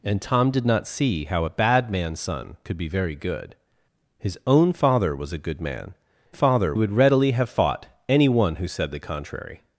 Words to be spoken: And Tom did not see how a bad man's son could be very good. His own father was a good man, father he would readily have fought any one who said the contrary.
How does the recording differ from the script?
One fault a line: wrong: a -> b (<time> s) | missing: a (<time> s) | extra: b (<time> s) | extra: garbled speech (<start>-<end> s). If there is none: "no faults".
no faults